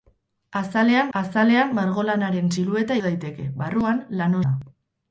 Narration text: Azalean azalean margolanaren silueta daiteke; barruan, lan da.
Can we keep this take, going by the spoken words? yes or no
yes